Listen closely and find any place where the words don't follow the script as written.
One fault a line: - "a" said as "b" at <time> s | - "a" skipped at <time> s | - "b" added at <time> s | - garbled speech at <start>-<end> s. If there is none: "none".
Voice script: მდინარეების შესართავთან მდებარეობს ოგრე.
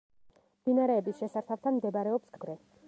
none